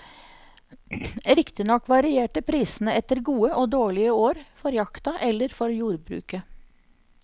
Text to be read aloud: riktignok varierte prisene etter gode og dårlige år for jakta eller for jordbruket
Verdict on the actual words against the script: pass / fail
pass